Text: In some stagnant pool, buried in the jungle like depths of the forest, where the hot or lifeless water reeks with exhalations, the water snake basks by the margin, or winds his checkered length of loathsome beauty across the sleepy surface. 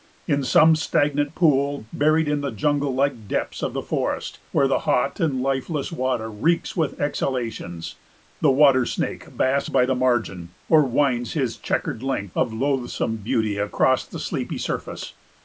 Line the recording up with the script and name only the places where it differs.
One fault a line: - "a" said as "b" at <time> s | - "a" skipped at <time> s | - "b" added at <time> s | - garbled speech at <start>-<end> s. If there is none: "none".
- "or" said as "and" at 5.2 s